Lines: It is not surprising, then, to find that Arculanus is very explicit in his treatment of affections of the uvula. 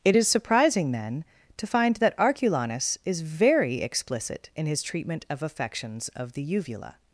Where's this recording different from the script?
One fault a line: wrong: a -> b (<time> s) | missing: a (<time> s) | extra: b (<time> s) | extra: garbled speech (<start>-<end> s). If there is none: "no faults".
missing: not (0.3 s)